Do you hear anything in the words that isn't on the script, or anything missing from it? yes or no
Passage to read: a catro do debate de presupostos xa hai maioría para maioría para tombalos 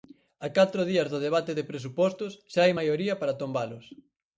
yes